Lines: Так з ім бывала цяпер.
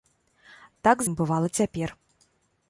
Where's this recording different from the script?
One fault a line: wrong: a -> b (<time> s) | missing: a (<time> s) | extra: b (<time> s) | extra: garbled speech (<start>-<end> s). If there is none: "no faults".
missing: з (1.0 s)